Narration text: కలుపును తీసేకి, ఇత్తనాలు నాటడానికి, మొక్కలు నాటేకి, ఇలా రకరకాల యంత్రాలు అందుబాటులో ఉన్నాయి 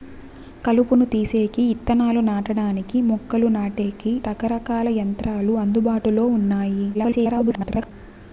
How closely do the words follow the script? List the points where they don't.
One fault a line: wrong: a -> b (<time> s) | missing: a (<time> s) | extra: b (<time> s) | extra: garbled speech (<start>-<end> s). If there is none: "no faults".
missing: ఇలా (4.1 s)
extra: garbled speech (6.9-7.9 s)